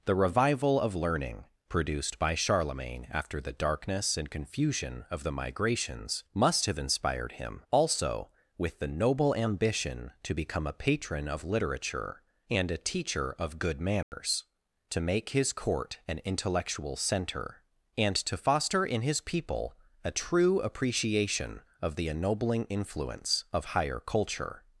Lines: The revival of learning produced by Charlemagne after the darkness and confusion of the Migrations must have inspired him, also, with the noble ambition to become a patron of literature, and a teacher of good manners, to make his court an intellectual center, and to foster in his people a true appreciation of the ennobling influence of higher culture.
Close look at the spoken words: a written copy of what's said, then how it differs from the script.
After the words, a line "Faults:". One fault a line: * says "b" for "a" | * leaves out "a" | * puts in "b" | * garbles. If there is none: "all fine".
The revival of learning produced by Charlemagne after the darkness and confusion of the Migrations must have inspired him, also, with the noble ambition to become a patron of literature, and a teacher of good manners, to make his court an intellectual center, and to foster in his people a true appreciation of the ennobling influence of higher culture.
Faults:
all fine